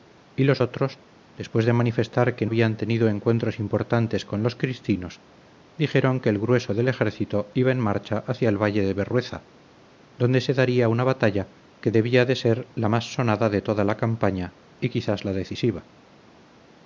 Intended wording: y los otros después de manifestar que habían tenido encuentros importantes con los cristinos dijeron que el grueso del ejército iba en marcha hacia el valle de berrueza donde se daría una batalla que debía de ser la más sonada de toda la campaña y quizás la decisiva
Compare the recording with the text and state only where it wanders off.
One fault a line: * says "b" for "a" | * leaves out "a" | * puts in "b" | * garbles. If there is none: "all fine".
all fine